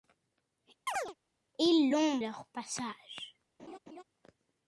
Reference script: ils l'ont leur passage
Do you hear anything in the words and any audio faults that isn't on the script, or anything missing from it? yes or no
yes